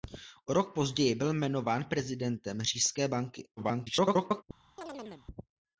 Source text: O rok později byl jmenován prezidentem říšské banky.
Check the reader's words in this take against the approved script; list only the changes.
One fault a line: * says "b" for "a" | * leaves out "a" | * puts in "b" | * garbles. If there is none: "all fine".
* garbles